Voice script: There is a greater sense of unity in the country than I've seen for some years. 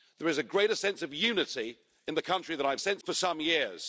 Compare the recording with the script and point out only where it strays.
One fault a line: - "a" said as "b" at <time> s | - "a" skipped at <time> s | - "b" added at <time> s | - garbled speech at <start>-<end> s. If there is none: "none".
- "seen" said as "sense" at 2.8 s